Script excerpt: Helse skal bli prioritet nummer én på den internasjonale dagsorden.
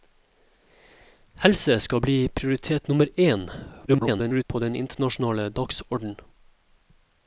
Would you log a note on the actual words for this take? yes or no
yes